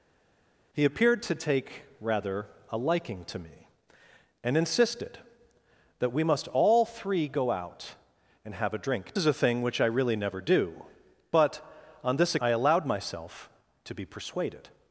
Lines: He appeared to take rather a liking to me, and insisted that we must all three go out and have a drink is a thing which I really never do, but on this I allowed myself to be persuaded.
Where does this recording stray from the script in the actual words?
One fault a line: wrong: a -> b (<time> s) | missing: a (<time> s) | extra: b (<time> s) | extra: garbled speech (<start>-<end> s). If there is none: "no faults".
no faults